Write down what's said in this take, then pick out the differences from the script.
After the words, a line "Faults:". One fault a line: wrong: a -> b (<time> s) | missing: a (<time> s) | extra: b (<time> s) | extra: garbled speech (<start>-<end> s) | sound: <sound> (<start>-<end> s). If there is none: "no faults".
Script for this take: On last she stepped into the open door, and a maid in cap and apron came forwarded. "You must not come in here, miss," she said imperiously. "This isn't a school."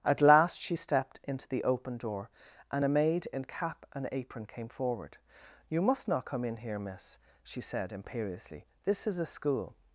At last she stepped into the open door, and a maid in cap and apron came forward. "You must not come in here, miss," she said imperiously. "This is a school."
Faults:
wrong: On -> At (0.0 s)
wrong: forwarded -> forward (4.7 s)
wrong: isn't -> is (9.1 s)